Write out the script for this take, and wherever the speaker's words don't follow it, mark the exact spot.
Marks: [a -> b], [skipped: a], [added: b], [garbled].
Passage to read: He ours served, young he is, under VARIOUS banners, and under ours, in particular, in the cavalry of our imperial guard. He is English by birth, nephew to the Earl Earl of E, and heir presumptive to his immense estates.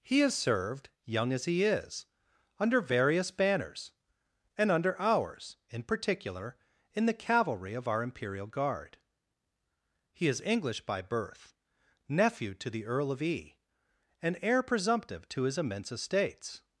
He [ours -> has] served, young [added: as] he is, under VARIOUS banners, and under ours, in particular, in the cavalry of our imperial guard. He is English by birth, nephew to the Earl [skipped: Earl] of E, and heir presumptive to his immense estates.